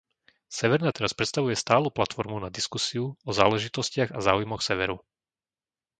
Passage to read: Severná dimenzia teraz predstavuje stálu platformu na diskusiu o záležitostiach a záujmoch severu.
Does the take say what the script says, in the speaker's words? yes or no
no